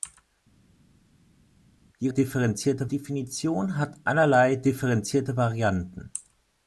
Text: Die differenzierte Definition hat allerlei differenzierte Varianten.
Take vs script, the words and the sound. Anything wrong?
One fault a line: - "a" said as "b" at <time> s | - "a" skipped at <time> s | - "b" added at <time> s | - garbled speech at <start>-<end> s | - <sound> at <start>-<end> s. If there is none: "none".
none